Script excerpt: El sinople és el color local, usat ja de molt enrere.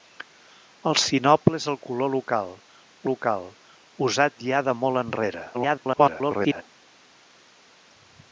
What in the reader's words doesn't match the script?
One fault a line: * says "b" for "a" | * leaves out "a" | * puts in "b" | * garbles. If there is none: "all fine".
* puts in "local"
* garbles